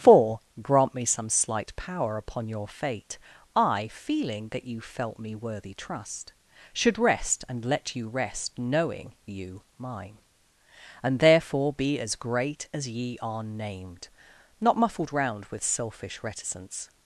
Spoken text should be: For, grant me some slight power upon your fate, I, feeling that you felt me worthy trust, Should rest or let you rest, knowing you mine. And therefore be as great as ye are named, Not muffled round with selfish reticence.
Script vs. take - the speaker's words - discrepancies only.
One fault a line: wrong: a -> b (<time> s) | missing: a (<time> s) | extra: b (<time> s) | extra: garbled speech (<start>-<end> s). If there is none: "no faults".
wrong: or -> and (7.5 s)